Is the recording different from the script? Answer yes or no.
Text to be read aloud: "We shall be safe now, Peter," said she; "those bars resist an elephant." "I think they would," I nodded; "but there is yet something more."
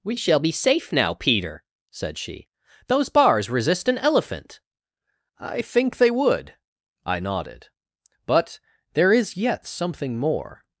no